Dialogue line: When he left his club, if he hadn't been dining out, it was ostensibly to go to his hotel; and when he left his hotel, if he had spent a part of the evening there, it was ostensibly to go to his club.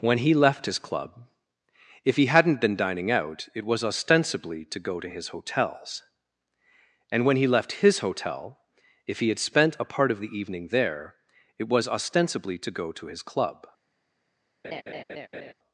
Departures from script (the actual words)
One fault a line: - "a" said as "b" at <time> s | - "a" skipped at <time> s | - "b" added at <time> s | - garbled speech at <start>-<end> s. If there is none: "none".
- "hotel" said as "hotels" at 5.3 s